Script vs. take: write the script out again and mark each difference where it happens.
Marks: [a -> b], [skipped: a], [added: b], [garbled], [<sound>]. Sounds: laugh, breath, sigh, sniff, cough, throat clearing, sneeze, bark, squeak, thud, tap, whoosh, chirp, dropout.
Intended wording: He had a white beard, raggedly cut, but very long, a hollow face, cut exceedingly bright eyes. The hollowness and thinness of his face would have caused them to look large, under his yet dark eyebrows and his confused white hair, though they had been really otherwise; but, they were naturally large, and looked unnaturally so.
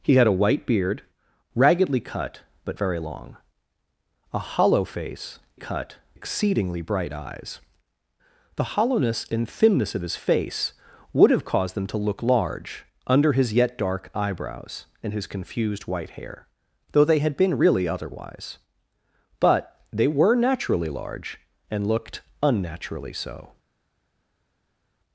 He had a white beard, raggedly cut, but very long, a hollow face, cut exceedingly bright eyes. The hollowness and thinness of his face would have caused them to look large, under his yet dark eyebrows and his confused white hair, though they had been really otherwise; but, they were naturally large, and looked unnaturally so.